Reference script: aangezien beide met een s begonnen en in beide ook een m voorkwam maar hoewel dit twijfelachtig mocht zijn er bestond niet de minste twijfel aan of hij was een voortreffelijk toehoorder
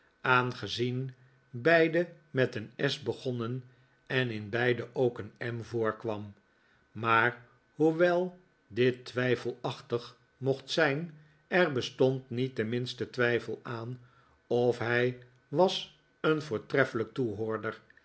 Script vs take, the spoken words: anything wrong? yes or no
no